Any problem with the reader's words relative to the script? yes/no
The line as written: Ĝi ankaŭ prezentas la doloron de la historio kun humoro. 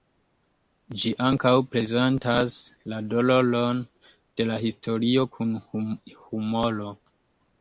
no